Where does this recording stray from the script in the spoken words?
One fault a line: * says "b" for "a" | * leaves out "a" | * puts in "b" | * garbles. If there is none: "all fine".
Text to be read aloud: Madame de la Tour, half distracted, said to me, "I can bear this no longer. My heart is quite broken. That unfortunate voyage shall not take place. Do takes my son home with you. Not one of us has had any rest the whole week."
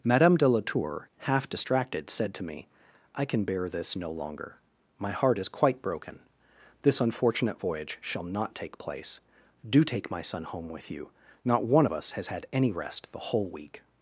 * says "This" for "That"
* says "take" for "takes"